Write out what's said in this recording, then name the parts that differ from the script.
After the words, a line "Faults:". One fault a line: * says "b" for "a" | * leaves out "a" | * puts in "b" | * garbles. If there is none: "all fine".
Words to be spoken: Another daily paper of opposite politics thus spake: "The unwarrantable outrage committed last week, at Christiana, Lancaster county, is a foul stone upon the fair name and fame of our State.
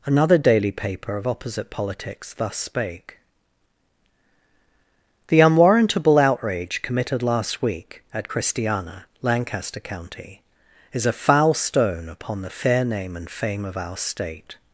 Another daily paper of opposite politics thus spake: "The unwarrantable outrage committed last week, at Christiana, Lancaster county, is a foul stone upon the fair name and fame of our State.
Faults:
all fine